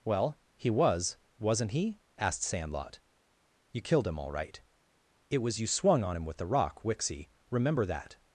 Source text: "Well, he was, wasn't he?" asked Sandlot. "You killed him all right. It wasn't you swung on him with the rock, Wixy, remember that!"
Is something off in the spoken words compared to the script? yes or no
yes